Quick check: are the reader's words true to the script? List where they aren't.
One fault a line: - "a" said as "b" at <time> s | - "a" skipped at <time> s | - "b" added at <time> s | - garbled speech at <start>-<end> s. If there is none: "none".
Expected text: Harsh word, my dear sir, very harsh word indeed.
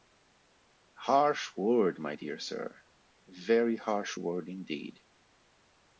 none